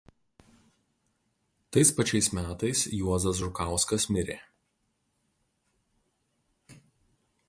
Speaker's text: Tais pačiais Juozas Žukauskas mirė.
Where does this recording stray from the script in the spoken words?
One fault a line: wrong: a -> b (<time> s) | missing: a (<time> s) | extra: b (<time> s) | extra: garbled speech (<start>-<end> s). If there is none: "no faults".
extra: metais (2.4 s)